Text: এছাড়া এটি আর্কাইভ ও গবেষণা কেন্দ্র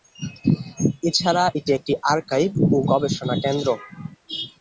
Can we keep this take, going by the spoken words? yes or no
no